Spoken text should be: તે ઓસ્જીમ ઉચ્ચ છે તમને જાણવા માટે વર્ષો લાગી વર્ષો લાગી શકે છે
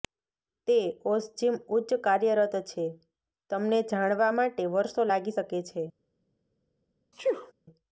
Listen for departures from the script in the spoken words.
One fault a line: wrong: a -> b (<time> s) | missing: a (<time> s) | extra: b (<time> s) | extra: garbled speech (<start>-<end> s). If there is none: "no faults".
extra: કાર્યરત (2.0 s)
missing: વર્ષો લાગી (5.4 s)